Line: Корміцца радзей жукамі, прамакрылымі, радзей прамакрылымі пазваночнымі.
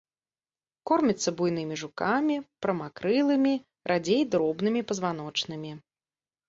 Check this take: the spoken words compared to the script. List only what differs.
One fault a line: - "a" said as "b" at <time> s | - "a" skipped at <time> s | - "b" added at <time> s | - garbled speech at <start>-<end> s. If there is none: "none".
- "радзей" said as "буйнымі" at 1.4 s
- "прамакрылымі" said as "дробнымі" at 4.3 s